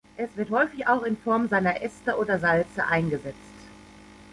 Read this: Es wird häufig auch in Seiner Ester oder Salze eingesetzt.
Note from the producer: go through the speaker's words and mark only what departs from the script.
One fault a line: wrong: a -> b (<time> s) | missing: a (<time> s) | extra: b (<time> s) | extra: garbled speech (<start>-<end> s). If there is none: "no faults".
extra: Form (1.2 s)